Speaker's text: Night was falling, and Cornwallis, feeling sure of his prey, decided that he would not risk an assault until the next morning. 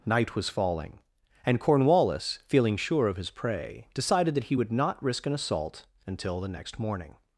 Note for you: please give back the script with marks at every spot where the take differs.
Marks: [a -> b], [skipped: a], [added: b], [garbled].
Night was falling, and Cornwallis, feeling sure of his prey, decided that he would not risk an assault until the next morning.